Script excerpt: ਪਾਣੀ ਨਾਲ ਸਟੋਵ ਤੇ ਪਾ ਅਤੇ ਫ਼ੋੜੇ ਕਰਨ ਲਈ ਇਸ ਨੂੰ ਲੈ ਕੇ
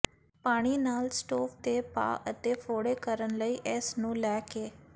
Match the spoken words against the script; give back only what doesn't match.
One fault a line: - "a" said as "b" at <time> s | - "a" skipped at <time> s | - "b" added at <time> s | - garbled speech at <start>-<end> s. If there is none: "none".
none